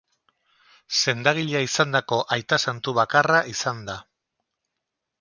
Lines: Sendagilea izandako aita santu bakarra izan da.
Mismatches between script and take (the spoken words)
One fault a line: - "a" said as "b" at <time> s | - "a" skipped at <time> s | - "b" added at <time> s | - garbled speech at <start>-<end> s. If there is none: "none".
none